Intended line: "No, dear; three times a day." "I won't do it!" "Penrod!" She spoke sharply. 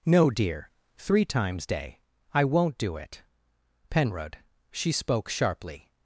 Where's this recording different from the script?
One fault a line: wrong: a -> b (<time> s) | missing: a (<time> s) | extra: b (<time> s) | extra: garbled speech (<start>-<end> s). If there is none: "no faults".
missing: a (1.6 s)